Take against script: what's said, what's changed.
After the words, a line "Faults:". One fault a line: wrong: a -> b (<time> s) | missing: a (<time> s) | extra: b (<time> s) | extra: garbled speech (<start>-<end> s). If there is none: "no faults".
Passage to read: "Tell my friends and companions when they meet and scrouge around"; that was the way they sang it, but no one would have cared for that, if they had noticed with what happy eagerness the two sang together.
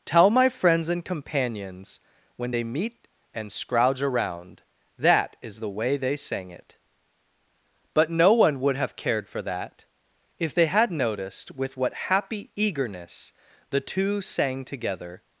"Tell my friends and companions when they meet and scrouge around"; that is the way they sang it, but no one would have cared for that, if they had noticed with what happy eagerness the two sang together.
Faults:
wrong: was -> is (5.4 s)